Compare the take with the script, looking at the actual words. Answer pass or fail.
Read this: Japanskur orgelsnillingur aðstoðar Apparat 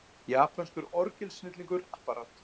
fail